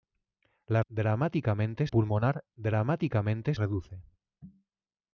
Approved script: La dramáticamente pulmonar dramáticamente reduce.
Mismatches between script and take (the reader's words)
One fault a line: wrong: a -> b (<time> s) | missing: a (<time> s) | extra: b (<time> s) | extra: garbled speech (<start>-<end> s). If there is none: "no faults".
no faults